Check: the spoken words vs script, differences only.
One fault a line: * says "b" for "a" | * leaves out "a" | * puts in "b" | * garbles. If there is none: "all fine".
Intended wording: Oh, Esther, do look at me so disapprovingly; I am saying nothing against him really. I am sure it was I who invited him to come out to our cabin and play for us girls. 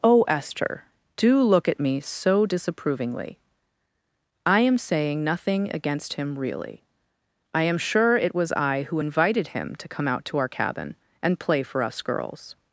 all fine